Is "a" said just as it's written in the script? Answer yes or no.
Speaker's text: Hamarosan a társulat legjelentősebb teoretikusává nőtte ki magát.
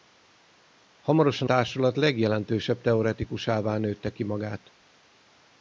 no